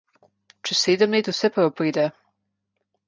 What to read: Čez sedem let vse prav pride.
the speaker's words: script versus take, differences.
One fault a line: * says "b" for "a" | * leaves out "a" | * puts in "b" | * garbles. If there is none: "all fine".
all fine